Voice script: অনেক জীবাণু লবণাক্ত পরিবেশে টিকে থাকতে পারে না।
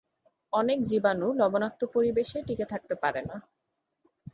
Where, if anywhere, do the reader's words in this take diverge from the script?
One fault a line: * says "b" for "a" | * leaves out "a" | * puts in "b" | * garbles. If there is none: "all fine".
all fine